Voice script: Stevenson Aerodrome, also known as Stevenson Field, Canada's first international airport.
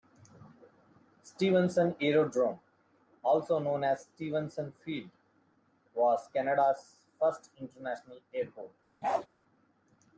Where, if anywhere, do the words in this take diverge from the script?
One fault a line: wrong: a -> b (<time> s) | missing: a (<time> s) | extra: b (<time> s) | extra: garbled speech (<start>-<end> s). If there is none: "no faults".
extra: was (5.9 s)